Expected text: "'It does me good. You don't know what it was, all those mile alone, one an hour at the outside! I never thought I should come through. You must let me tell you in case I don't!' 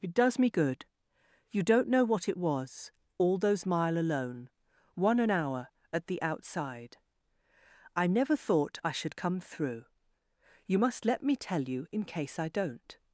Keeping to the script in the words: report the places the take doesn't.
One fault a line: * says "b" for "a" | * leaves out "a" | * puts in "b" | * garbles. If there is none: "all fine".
all fine